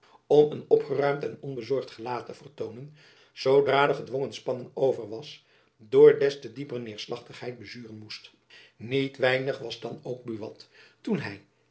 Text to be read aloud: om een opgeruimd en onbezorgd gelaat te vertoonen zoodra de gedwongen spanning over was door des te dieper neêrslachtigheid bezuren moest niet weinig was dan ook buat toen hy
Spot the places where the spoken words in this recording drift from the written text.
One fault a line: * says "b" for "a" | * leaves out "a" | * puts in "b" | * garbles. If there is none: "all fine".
all fine